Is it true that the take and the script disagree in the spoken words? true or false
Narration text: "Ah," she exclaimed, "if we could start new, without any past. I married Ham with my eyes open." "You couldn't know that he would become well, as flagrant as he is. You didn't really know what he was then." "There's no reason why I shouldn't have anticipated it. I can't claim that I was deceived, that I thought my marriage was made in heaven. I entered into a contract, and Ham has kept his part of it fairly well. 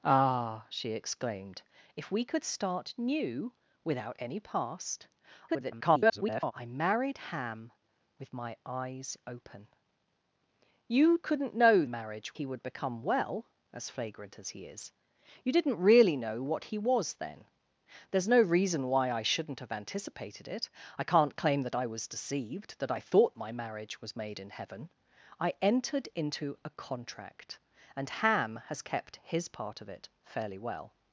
true